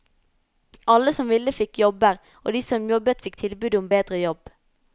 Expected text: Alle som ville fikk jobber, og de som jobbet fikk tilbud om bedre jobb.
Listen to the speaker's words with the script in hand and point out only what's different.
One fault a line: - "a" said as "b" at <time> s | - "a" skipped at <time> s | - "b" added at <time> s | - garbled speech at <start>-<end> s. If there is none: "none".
none